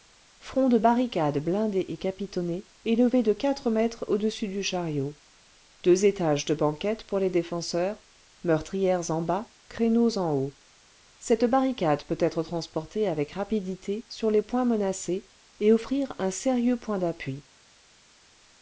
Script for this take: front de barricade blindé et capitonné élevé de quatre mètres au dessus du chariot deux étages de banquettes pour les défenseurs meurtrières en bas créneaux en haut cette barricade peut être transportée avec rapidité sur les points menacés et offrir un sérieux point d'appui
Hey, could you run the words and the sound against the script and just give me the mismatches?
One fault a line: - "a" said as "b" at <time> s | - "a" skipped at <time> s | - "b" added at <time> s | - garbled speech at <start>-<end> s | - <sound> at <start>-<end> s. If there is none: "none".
none